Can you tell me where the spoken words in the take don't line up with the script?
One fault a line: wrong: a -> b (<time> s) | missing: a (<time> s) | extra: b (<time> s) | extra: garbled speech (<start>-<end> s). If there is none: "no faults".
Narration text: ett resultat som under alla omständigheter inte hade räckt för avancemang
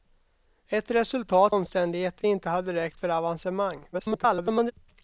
missing: som under alla (1.6 s)
extra: garbled speech (3.9-4.7 s)